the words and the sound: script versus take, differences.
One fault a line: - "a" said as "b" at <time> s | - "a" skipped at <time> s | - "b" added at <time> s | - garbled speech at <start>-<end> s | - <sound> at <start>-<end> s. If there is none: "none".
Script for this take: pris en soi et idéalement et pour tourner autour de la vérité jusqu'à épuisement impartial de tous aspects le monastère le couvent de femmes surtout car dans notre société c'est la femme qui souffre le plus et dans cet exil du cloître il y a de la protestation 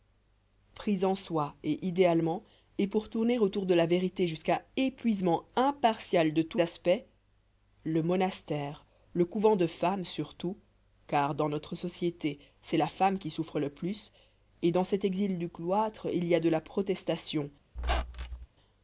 - squeak at 17.8-18.5 s